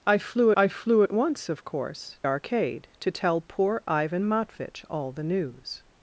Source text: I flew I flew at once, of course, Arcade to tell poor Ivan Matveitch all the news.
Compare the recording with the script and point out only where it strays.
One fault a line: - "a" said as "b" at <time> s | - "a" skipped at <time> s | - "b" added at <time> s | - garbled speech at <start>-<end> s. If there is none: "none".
none